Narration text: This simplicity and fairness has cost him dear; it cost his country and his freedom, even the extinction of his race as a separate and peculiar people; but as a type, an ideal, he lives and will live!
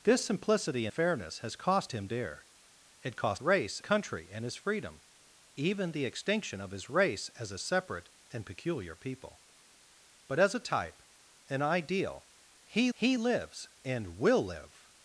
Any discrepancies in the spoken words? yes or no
yes